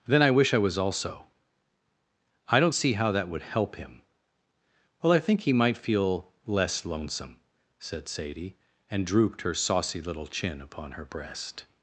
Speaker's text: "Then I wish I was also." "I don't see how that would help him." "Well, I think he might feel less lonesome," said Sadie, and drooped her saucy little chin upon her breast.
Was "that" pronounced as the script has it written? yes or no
yes